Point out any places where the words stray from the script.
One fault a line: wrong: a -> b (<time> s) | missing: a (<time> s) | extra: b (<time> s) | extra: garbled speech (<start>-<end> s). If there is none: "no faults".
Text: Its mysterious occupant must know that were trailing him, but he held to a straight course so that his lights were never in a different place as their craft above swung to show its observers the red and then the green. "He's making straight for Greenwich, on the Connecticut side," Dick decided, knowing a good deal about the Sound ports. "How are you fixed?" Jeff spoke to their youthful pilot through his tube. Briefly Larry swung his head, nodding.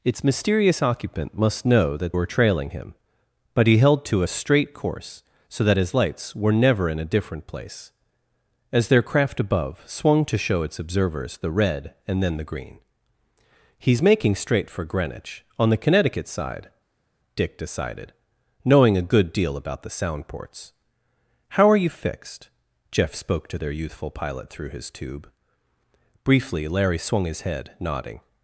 no faults